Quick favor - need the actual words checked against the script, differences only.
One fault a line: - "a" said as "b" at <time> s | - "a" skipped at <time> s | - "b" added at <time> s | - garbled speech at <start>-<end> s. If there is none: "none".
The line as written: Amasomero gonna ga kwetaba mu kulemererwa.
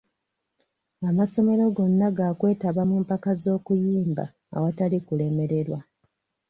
- "mpaka z'okuyimba awatali" added at 3.0 s